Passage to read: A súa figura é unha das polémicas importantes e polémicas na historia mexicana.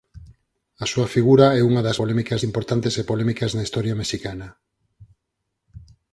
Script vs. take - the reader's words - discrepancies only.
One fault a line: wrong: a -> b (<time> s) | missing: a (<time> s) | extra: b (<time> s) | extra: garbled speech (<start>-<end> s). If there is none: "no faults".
no faults